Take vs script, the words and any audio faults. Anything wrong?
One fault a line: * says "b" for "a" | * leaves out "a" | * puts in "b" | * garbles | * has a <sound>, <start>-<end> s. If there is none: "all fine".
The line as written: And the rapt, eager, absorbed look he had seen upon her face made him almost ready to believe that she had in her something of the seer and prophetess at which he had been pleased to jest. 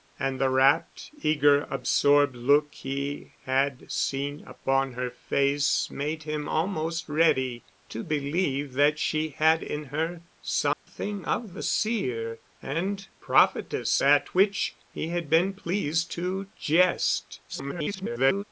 * has a dropout, 10.7-10.9 s
* garbles